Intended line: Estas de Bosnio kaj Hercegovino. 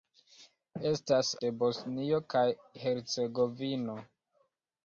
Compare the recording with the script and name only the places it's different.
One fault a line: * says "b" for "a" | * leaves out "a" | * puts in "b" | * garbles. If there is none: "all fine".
all fine